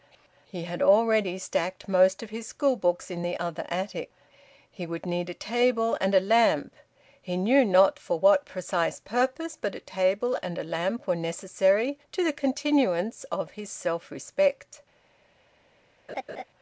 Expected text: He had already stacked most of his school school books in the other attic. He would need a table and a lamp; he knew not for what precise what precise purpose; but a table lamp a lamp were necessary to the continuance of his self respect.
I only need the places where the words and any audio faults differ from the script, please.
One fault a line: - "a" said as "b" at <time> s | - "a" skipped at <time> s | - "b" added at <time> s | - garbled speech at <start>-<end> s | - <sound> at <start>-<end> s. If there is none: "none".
- "school" skipped at 2.8 s
- "what precise" skipped at 9.0 s
- "lamp" said as "and" at 10.4 s
- laugh at 16.1-16.4 s